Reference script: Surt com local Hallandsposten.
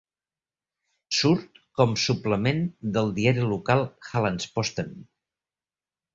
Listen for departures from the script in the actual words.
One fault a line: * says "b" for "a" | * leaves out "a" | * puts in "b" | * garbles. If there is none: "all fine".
* puts in "suplement del diari"